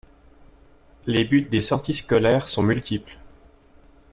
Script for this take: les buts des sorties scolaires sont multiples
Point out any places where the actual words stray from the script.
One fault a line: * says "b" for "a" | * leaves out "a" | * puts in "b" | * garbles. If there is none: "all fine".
all fine